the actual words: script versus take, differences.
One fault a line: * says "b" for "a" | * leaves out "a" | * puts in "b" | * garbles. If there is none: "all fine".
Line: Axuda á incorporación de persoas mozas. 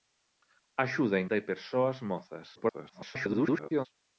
* leaves out "incorporación"
* garbles